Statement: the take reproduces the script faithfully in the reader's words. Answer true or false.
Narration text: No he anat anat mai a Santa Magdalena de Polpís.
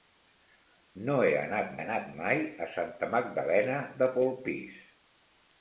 true